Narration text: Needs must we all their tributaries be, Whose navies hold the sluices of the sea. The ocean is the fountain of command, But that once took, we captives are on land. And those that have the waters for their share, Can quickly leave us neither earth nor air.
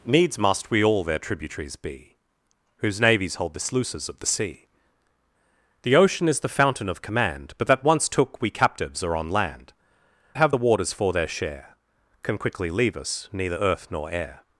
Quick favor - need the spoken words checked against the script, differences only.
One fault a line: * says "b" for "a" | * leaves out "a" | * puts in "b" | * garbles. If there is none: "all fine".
* leaves out "And those that"